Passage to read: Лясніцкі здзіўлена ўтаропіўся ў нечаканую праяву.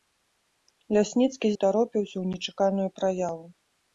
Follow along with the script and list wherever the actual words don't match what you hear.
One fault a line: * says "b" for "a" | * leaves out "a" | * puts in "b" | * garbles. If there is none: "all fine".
* leaves out "здзіўлена"